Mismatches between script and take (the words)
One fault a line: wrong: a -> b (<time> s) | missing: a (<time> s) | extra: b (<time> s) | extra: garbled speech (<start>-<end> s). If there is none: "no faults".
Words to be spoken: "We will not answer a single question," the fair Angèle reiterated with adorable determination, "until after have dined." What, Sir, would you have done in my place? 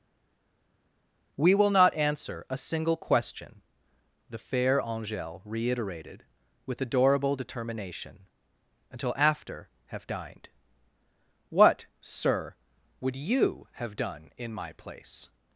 no faults